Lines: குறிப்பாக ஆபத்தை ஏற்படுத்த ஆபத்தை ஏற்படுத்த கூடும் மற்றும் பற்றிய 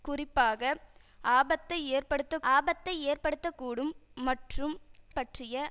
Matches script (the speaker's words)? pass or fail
pass